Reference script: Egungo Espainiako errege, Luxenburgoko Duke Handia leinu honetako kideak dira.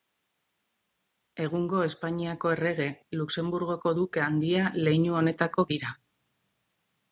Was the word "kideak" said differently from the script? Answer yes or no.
yes